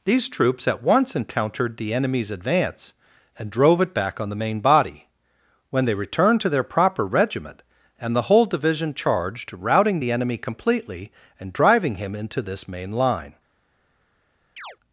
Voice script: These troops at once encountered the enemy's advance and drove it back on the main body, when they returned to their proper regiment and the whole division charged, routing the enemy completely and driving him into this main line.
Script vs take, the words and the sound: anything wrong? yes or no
yes